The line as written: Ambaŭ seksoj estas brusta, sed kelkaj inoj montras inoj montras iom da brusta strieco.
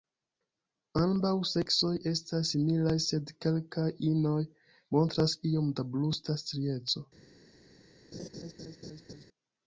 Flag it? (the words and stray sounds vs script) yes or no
yes